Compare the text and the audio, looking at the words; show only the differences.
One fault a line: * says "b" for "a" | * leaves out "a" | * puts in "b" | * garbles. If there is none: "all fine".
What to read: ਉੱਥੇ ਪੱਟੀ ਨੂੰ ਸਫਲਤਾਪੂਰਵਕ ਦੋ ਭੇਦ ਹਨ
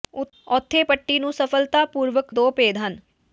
all fine